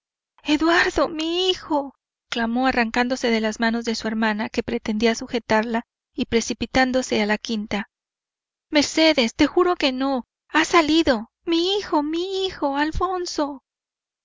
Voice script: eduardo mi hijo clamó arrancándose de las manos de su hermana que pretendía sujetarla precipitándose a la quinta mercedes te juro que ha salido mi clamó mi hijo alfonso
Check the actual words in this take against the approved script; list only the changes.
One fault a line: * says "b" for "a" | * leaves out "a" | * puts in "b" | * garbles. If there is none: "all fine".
* puts in "y"
* puts in "no"
* says "hijo" for "clamó"